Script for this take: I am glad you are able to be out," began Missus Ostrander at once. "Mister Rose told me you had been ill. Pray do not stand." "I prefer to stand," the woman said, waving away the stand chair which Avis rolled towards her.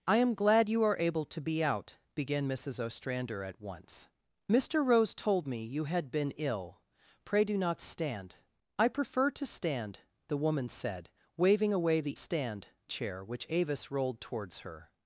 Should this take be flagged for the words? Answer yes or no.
no